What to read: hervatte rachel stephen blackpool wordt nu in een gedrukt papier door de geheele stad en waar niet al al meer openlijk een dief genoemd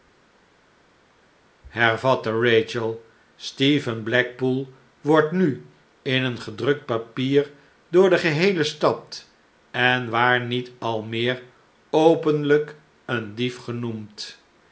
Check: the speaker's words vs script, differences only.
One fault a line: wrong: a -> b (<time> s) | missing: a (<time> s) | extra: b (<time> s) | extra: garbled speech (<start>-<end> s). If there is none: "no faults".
missing: al (11.0 s)